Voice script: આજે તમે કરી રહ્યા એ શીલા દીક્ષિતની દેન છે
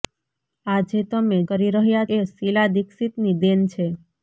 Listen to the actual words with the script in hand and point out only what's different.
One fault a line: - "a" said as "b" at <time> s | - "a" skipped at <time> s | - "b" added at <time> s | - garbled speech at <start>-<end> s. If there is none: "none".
none